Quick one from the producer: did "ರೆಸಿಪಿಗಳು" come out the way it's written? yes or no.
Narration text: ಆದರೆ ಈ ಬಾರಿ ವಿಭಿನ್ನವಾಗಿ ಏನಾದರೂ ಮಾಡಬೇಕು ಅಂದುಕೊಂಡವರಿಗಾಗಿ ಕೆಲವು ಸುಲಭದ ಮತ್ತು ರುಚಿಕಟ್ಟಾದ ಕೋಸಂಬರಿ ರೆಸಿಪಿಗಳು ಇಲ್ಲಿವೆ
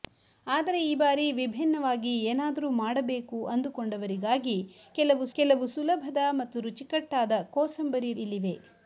no